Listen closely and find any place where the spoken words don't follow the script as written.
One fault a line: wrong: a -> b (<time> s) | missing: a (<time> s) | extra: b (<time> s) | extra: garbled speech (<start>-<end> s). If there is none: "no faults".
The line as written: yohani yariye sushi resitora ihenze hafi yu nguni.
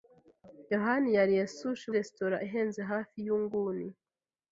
no faults